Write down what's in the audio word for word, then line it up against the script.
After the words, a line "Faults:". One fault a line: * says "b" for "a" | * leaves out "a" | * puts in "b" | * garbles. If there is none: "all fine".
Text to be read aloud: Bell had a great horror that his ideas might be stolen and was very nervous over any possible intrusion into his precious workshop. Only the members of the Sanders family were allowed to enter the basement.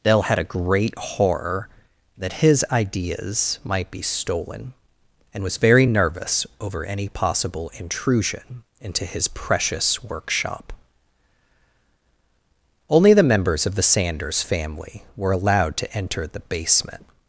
Dell had a great horror that his ideas might be stolen and was very nervous over any possible intrusion into his precious workshop. Only the members of the Sanders family were allowed to enter the basement.
Faults:
* says "Dell" for "Bell"